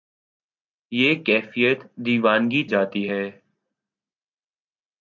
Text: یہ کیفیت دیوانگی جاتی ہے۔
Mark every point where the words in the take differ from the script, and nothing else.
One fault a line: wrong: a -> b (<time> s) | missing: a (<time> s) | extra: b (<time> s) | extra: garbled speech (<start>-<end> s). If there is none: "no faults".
no faults